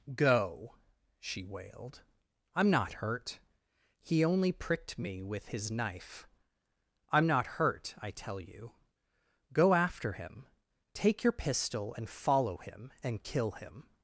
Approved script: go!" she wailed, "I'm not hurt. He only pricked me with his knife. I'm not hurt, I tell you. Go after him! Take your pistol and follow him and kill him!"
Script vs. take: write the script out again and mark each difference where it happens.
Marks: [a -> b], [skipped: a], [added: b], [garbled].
go!" she wailed, "I'm not hurt. He only pricked me with his knife. I'm not hurt, I tell you. Go after him! Take your pistol and follow him and kill him!"